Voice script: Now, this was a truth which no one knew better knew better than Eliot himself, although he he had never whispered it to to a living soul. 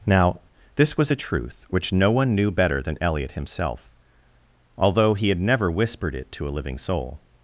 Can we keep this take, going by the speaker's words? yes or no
no